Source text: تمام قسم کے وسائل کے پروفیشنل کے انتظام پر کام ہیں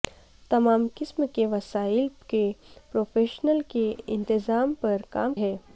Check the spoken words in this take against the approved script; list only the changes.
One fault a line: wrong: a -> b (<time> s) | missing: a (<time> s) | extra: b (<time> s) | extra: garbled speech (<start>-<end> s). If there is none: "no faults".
no faults